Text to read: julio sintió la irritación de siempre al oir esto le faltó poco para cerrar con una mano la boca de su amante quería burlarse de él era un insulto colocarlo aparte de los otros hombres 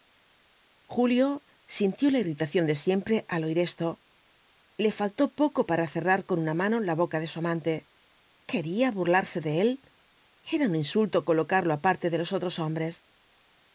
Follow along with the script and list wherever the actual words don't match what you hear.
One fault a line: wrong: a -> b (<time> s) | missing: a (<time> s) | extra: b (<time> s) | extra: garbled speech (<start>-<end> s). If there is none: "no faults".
no faults